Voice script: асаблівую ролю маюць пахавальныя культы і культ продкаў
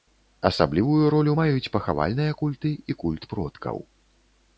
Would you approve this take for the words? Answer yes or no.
yes